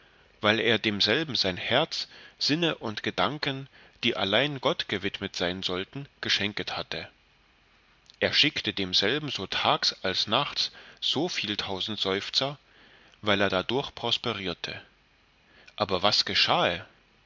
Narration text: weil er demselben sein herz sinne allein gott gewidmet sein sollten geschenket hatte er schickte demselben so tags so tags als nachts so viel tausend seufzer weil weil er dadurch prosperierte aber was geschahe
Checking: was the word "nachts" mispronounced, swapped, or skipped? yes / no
no